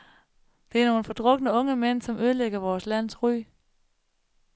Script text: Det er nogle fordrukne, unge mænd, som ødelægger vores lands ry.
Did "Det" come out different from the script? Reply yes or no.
no